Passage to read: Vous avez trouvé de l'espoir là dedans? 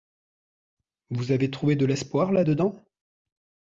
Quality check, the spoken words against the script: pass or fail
pass